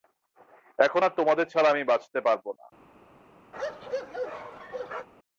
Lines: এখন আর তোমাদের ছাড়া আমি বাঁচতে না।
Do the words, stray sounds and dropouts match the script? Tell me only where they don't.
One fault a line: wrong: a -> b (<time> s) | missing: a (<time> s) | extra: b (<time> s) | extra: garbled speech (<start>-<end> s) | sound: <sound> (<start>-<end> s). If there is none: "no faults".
extra: পারব (2.2 s)
sound: bark (3.5-5.1 s)